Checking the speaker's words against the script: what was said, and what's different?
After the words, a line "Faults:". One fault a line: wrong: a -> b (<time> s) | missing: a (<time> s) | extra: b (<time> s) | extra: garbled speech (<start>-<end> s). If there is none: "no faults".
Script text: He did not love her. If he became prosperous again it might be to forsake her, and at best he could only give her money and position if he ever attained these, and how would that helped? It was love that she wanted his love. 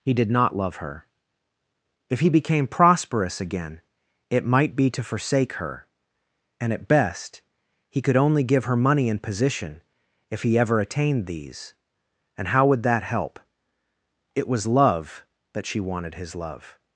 He did not love her. If he became prosperous again it might be to forsake her, and at best he could only give her money and position if he ever attained these, and how would that help? It was love that she wanted his love.
Faults:
wrong: helped -> help (13.0 s)